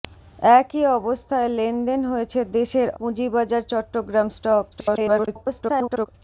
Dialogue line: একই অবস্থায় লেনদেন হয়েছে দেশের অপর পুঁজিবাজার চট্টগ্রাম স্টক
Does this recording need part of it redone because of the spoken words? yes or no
yes